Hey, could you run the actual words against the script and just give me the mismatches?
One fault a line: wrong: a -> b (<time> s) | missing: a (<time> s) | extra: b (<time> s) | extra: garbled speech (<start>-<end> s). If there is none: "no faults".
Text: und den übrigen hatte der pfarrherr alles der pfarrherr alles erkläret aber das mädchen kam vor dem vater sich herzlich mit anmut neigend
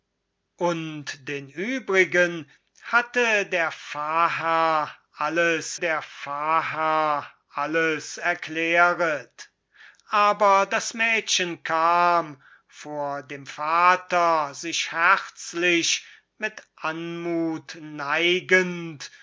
no faults